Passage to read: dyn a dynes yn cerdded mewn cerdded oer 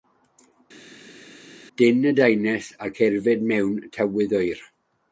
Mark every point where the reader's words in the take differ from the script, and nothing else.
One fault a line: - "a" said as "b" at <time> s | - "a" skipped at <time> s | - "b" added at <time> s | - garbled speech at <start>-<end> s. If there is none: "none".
- "cerdded" said as "tywydd" at 4.0 s